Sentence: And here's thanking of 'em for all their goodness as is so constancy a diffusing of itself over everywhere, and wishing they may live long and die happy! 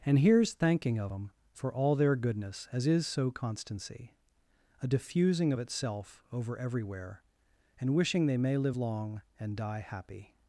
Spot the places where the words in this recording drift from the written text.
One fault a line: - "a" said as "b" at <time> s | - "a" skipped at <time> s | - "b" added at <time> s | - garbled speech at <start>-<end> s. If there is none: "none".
none